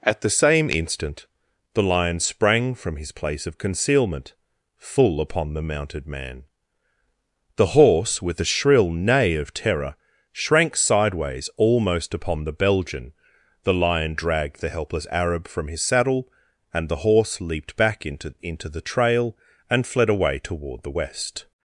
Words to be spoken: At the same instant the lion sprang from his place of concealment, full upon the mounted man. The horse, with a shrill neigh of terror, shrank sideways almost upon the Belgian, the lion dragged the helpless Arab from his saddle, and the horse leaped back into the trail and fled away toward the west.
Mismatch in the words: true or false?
true